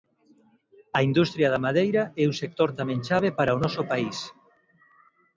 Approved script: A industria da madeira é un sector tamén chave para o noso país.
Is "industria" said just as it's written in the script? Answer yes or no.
yes